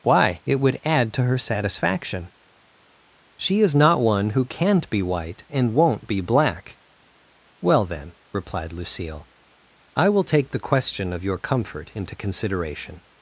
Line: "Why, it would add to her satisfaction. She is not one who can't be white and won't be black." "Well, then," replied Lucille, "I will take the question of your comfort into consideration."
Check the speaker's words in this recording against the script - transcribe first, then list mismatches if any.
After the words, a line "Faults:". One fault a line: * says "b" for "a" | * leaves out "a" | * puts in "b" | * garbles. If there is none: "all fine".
"Why, it would add to her satisfaction. She is not one who can't be white and won't be black." "Well, then," replied Lucille, "I will take the question of your comfort into consideration."
Faults:
all fine